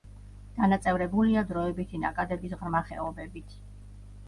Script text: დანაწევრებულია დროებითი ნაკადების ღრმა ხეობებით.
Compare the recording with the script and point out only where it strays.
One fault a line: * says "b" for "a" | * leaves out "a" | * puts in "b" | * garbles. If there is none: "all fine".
all fine